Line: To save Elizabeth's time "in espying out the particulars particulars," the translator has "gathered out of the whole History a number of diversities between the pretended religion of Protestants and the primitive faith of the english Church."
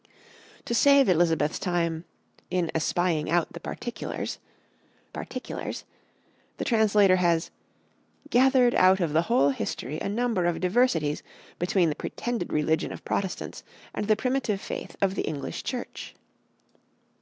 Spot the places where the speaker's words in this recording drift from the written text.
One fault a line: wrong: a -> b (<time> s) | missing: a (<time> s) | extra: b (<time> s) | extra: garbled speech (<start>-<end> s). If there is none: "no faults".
no faults